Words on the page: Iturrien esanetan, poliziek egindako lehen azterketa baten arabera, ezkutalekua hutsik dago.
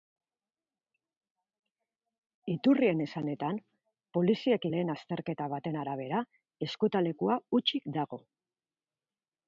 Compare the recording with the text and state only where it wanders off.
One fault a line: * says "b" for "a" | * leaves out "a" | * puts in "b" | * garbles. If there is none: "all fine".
* leaves out "egindako"